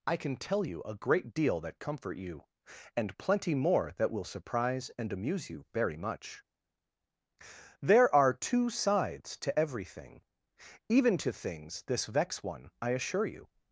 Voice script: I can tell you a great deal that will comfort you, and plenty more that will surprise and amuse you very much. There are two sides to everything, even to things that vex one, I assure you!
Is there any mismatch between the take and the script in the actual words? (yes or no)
yes